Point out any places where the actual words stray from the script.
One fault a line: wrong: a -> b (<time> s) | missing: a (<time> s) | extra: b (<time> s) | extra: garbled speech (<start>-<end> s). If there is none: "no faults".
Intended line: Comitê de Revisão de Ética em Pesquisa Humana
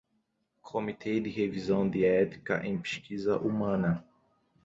no faults